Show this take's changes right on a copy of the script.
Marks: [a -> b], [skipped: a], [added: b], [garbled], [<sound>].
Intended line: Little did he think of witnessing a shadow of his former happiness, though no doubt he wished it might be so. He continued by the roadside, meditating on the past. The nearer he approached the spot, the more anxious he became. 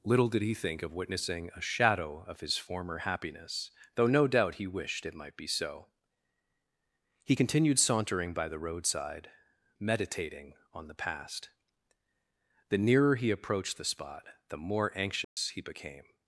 Little did he think of witnessing a shadow of his former happiness, though no doubt he wished it might be so. He continued [added: sauntering] by the roadside, meditating on the past. The nearer he approached the spot, the more anxious [dropout] he became.